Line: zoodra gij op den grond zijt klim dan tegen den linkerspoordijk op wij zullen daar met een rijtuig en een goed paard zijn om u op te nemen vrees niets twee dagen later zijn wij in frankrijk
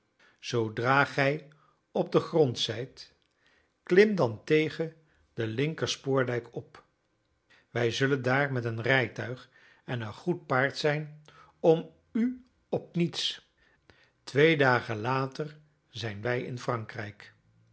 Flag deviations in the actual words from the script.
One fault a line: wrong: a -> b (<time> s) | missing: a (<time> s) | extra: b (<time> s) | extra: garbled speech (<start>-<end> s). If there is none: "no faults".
missing: te nemen vrees (12.9 s)